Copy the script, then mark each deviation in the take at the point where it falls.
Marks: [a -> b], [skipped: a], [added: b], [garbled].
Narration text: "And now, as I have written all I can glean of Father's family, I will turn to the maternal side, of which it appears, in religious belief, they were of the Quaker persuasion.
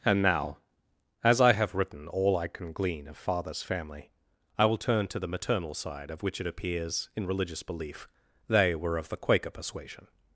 "And now, as I have written all I can glean of Father's family, I will turn to the maternal side, of which it appears, in religious belief, they were of the Quaker persuasion.